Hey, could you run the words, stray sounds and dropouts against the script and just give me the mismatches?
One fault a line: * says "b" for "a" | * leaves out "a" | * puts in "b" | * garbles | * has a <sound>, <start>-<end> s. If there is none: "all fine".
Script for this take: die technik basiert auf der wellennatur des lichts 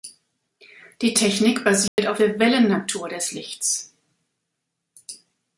* has a dropout, 1.9-2.0 s